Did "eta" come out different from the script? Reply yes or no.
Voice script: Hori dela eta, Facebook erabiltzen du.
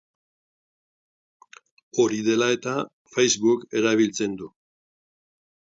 no